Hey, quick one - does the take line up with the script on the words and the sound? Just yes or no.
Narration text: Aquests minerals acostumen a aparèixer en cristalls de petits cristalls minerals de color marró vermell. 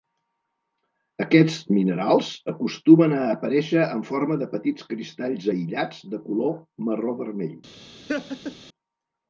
no